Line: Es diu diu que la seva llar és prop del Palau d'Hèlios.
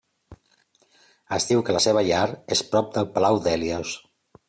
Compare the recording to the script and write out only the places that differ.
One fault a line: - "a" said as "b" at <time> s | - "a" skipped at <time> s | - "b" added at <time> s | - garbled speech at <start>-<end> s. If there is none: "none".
- "diu" skipped at 1.6 s